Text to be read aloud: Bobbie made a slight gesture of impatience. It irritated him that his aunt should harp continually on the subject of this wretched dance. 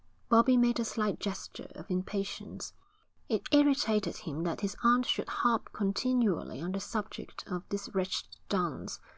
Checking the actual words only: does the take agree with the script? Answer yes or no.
yes